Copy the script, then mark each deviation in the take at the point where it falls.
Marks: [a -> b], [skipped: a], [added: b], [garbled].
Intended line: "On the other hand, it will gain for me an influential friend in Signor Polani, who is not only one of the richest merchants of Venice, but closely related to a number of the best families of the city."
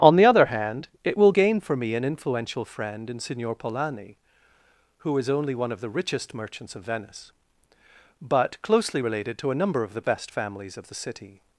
"On the other hand, it will gain for me an influential friend in Signor Polani, who is [skipped: not] only one of the richest merchants of Venice, but closely related to a number of the best families of the city."